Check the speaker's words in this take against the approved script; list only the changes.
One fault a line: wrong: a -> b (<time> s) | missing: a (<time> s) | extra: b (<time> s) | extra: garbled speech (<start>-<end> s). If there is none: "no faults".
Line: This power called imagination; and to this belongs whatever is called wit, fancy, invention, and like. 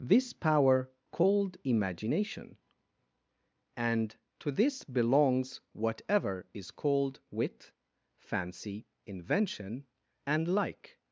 no faults